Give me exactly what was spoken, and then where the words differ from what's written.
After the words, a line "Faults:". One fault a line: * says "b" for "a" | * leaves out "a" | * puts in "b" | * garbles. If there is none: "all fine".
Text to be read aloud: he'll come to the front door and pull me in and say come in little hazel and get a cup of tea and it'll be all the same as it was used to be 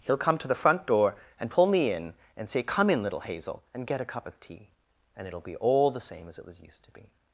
he'll come to the front door and pull me in and say come in little hazel and get a cup of tea and it'll be all the same as it was used to be
Faults:
all fine